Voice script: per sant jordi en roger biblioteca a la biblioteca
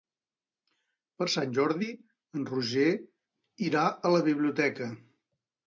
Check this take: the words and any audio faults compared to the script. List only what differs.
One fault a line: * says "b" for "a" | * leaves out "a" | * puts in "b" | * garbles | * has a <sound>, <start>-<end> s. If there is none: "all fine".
* says "irà" for "biblioteca"